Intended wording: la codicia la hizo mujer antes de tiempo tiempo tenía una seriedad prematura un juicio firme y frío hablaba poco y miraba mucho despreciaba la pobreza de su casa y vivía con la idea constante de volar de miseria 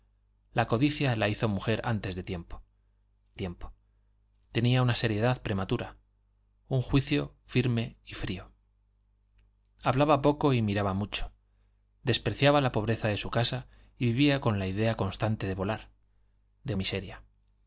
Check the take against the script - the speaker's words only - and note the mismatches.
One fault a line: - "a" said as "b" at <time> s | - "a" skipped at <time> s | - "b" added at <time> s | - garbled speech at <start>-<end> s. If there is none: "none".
none